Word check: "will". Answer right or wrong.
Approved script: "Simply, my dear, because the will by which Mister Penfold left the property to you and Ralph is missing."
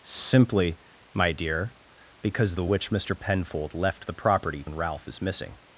wrong